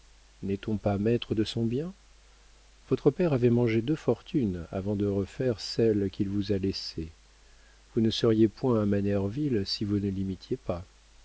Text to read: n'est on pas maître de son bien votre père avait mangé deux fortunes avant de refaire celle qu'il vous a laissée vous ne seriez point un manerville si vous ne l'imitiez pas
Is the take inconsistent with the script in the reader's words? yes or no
no